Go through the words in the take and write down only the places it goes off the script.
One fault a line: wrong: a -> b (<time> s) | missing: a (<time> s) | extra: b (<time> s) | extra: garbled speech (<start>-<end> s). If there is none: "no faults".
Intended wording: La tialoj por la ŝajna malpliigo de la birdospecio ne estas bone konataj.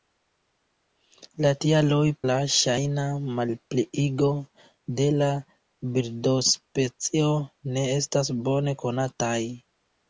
missing: por (2.0 s)